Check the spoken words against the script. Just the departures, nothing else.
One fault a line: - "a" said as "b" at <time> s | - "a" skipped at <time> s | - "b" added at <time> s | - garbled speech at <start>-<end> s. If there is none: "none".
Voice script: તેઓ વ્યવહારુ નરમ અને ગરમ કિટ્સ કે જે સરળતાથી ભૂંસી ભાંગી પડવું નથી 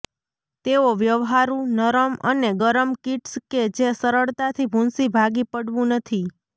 none